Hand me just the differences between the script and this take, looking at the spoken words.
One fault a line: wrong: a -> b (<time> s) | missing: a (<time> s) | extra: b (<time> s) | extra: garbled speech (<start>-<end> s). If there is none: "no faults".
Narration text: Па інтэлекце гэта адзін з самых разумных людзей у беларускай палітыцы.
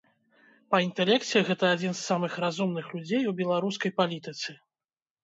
no faults